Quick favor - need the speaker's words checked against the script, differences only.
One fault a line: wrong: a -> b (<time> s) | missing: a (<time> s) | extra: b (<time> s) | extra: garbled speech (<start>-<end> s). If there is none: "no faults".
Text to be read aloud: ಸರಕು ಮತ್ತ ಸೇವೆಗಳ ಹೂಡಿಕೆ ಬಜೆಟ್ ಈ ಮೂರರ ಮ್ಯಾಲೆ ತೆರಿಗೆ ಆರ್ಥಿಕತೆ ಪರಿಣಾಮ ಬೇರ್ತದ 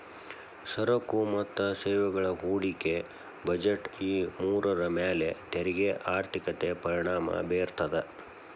no faults